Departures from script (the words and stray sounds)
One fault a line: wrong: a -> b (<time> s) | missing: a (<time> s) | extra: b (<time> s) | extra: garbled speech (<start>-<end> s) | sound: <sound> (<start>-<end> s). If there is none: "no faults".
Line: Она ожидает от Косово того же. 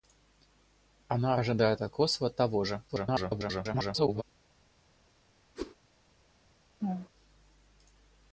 extra: garbled speech (2.9-4.2 s)
sound: whoosh (5.6-5.8 s)
sound: laugh (6.8-7.1 s)